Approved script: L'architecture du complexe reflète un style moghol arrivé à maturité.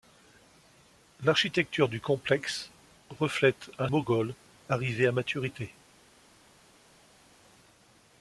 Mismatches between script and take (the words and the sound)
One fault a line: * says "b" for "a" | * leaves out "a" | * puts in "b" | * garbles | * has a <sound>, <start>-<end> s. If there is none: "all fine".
* leaves out "style"